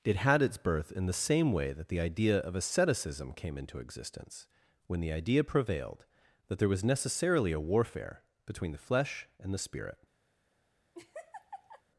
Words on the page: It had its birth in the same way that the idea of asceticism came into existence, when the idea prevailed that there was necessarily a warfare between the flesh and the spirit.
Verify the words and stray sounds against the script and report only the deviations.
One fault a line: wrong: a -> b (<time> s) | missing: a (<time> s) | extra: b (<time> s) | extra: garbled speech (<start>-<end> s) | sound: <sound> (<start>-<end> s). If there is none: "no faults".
sound: laugh (10.9-11.8 s)